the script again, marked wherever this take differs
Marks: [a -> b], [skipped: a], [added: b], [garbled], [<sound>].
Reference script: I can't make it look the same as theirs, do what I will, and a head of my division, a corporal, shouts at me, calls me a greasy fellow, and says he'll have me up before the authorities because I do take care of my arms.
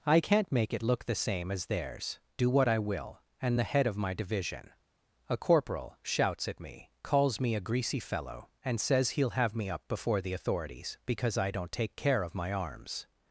I can't make it look the same as theirs, do what I will, and [a -> the] head of my division, a corporal, shouts at me, calls me a greasy fellow, and says he'll have me up before the authorities because I [do -> don't] take care of my arms.